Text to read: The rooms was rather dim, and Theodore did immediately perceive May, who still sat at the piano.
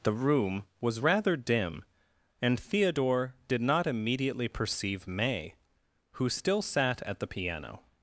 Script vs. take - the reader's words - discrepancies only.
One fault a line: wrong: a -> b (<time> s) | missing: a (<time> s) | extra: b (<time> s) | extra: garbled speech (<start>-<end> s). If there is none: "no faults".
wrong: rooms -> room (0.1 s)
extra: not (3.6 s)